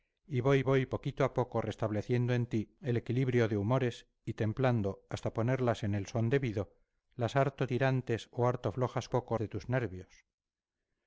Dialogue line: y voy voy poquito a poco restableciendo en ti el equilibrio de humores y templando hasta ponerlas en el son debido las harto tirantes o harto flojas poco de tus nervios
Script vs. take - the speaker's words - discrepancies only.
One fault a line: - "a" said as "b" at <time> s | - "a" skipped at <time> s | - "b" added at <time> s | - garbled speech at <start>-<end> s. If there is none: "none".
none